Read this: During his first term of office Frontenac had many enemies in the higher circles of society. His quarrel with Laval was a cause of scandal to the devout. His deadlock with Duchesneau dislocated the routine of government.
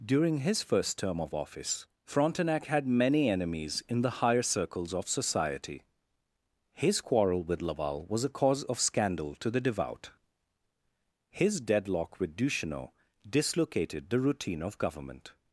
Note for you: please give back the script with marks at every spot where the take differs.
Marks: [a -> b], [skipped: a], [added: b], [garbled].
During his first term of office Frontenac had many enemies in the higher circles of society. His quarrel with Laval was a cause of scandal to the devout. His deadlock with Duchesneau dislocated the routine of government.